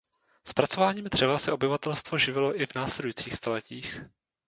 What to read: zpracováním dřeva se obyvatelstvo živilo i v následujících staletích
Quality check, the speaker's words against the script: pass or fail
pass